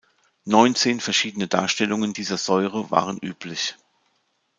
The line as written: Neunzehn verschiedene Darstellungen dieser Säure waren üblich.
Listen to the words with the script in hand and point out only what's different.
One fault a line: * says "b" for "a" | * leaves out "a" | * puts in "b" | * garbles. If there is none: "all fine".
all fine